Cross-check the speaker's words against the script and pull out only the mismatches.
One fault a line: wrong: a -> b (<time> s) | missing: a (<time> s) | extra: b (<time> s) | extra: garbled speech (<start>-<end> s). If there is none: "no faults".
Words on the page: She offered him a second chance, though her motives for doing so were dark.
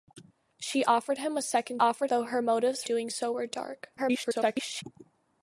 wrong: chance -> offered (1.8 s)
missing: for (2.8 s)
extra: garbled speech (4.0-4.8 s)